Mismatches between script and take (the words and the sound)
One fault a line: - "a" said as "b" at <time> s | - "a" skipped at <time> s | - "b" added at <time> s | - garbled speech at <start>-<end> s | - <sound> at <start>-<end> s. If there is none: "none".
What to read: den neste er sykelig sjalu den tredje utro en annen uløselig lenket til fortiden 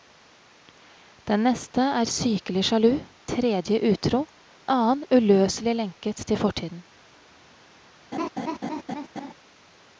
- "den" skipped at 2.9 s
- "en" skipped at 4.3 s
- laugh at 8.1-9.3 s